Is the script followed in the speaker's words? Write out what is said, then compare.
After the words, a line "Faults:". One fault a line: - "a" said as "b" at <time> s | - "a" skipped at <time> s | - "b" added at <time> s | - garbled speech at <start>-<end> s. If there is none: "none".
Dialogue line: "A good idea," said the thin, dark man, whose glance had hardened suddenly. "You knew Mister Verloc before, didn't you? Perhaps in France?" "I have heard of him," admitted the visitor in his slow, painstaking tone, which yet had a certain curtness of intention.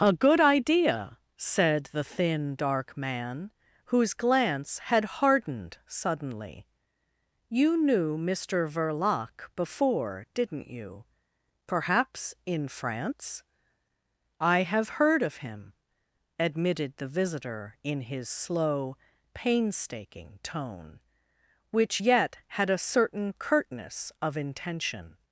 "A good idea," said the thin, dark man, whose glance had hardened suddenly. "You knew Mister Verloc before, didn't you? Perhaps in France?" "I have heard of him," admitted the visitor in his slow, painstaking tone, which yet had a certain curtness of intention.
Faults:
none